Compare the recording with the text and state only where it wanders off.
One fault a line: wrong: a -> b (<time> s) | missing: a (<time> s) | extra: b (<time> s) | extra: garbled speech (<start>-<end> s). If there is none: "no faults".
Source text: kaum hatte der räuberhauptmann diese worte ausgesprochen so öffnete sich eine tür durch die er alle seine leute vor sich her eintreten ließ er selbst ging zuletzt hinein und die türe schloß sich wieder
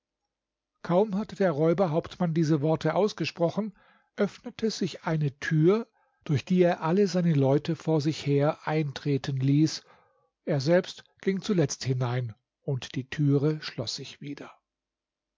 missing: so (3.8 s)